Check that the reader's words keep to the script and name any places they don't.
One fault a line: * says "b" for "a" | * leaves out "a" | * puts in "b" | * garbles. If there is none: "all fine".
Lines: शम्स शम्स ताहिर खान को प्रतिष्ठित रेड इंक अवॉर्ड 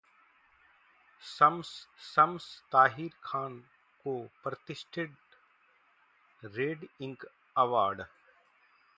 all fine